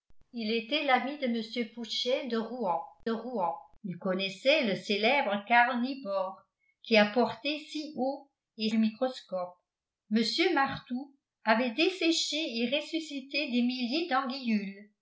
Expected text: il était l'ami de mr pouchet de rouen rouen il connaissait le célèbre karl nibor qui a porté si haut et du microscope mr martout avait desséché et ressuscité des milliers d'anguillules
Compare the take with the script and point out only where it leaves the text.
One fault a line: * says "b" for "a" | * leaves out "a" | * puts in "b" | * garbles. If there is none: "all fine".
all fine